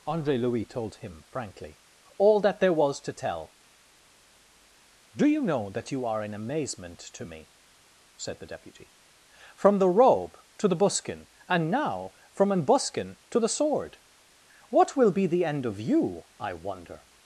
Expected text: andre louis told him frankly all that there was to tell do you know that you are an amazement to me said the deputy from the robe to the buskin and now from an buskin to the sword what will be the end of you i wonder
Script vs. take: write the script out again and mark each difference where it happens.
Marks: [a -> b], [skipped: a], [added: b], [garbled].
andre louis told him frankly all that there was to tell do you know that you are an amazement to me said the deputy from the robe to the buskin and now from an buskin to the sword what will be the end of you i wonder